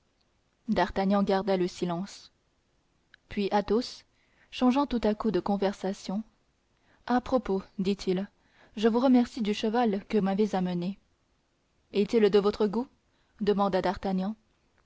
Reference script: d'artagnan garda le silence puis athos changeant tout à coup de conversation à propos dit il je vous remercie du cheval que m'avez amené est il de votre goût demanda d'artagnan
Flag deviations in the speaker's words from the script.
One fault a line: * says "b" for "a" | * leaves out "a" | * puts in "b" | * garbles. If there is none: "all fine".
all fine